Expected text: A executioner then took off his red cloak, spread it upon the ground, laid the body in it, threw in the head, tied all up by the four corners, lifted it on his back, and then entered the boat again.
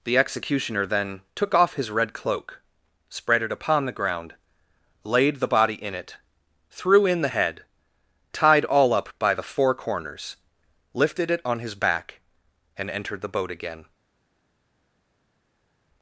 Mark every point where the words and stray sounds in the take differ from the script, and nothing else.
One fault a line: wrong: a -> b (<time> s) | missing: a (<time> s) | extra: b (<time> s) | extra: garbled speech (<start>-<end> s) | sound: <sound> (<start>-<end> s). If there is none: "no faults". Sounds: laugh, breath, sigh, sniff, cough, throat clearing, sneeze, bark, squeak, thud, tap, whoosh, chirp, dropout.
wrong: A -> The (0.0 s)
missing: then (12.9 s)